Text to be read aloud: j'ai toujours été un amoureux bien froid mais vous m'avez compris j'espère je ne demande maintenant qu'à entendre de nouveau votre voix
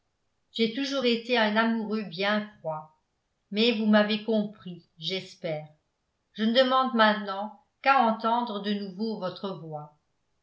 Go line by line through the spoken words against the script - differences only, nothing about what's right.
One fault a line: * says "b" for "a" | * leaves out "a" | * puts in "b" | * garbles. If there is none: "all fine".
all fine